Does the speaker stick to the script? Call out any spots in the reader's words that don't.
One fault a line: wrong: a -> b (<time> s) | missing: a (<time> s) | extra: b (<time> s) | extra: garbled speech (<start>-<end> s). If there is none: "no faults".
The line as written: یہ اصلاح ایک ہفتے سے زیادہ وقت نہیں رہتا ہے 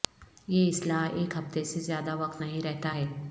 no faults